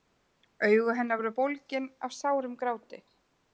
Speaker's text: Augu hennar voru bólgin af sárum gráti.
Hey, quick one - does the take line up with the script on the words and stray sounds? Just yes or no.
yes